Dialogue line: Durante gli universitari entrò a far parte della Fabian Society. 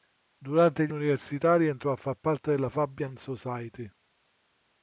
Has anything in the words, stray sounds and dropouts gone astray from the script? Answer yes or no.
no